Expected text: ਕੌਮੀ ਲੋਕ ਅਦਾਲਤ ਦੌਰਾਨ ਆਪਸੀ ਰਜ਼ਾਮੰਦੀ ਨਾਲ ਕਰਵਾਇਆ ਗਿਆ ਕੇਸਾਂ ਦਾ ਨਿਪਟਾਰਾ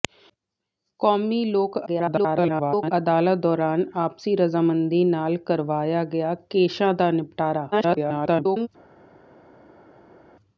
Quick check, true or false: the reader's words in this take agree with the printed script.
false